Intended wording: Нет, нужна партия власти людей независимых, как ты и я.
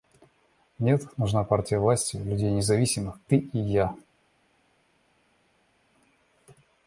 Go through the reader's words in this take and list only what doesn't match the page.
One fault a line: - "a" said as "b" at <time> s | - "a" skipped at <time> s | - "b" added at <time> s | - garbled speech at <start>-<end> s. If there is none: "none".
- "как" skipped at 3.2 s